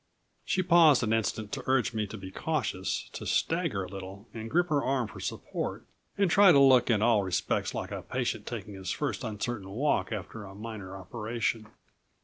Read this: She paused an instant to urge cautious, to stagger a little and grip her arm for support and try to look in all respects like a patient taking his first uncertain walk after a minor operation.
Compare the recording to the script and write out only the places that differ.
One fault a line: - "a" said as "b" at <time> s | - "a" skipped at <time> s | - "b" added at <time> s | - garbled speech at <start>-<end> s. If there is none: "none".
- "me to be" added at 1.9 s